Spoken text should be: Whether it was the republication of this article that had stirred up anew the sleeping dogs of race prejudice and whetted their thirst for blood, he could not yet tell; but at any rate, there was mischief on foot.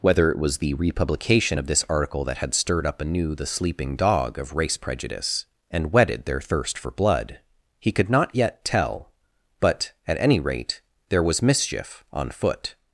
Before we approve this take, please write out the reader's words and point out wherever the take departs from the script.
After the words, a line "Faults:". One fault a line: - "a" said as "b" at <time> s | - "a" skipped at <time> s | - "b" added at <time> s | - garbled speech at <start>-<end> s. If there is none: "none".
Whether it was the republication of this article that had stirred up anew the sleeping dog of race prejudice and whetted their thirst for blood, he could not yet tell; but at any rate, there was mischief on foot.
Faults:
- "dogs" said as "dog" at 4.0 s